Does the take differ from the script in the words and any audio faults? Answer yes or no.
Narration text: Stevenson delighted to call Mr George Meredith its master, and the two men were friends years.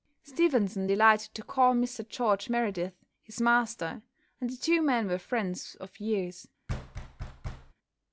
yes